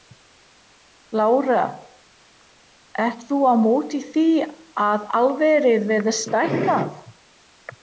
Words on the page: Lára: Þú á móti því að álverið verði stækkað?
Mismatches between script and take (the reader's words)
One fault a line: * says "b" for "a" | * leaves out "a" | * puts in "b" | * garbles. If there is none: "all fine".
* puts in "Ert"